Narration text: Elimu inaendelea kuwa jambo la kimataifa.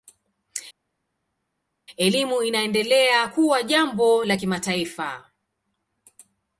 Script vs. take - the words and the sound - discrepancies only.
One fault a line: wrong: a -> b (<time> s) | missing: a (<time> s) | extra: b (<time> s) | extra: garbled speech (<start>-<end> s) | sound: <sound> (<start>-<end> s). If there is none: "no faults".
no faults